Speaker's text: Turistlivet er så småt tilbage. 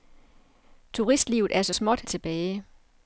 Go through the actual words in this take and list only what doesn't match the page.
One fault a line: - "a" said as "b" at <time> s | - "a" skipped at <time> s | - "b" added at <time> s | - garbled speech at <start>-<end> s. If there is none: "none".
none